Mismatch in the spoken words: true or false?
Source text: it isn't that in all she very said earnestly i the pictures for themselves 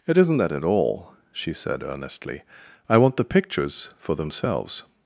true